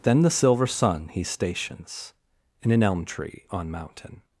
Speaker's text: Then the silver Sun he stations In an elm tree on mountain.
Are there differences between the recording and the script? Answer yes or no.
no